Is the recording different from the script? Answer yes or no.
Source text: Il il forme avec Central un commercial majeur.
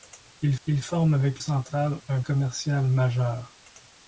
no